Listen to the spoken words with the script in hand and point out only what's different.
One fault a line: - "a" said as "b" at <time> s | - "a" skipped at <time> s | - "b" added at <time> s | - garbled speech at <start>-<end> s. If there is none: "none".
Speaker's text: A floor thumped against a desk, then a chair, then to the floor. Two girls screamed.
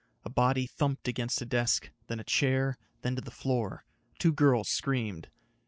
- "floor" said as "body" at 0.3 s